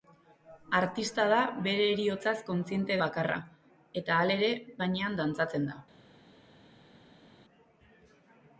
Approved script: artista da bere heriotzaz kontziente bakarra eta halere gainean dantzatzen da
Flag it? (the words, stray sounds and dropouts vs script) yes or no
no